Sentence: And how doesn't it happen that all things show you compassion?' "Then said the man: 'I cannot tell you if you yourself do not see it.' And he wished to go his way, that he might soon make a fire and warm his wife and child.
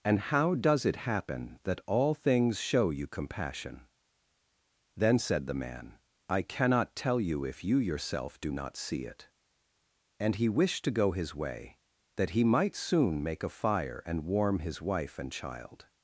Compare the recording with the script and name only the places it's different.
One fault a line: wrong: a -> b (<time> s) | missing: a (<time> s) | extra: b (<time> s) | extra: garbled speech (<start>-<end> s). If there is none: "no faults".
wrong: doesn't -> does (0.6 s)